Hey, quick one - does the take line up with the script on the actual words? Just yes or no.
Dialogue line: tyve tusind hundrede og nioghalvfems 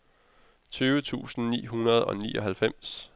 no